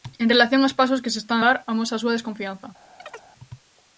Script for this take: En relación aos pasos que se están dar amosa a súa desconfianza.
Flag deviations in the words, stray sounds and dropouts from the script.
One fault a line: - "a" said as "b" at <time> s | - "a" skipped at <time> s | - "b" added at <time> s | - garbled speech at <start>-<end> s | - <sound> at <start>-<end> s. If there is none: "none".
- chirp at 3.0-3.3 s